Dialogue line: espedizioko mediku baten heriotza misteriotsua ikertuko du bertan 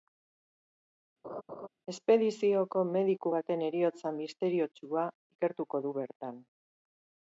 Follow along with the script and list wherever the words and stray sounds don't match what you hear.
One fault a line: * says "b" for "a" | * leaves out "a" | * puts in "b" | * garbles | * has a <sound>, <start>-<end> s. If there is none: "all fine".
* has a laugh, 1.2-1.7 s